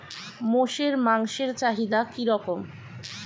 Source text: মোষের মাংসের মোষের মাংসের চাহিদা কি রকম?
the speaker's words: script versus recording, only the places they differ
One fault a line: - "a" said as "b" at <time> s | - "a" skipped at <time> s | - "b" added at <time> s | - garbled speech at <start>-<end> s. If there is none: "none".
- "মোষের মাংসের" skipped at 1.5 s